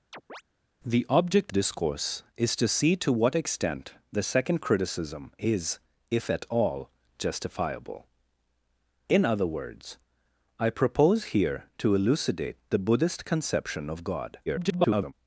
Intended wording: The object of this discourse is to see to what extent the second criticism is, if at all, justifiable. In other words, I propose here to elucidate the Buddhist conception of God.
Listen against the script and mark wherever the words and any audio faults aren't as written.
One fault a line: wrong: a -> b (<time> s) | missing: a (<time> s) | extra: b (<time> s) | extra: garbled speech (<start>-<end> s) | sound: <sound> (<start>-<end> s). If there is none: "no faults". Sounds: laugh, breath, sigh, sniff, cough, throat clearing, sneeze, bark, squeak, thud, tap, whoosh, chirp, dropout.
sound: chirp (0.1-0.4 s)
missing: of this (1.5 s)
extra: garbled speech (14.5-15.1 s)